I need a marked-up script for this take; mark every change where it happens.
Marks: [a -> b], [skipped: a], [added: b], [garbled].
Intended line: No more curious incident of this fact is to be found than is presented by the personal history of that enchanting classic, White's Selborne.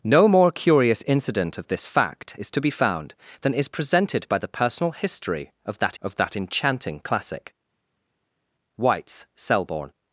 No more curious incident of this fact is to be found than is presented by the personal history of that [added: of that] enchanting classic, White's Selborne.